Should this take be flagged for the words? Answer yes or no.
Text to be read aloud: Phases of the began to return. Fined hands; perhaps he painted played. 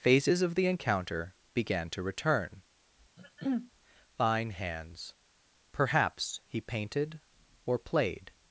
yes